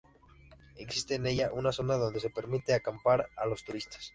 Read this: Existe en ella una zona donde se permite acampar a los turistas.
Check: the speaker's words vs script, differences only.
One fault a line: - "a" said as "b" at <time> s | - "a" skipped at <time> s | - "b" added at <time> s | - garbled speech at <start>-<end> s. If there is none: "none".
none